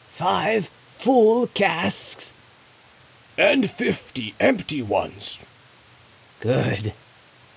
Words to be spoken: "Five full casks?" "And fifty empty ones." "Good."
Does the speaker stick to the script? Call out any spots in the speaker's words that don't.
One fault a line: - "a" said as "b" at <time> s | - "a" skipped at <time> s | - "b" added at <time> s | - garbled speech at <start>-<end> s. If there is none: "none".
none